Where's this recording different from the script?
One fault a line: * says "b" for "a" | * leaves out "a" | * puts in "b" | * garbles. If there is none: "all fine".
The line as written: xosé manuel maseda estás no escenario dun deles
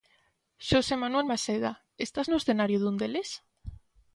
all fine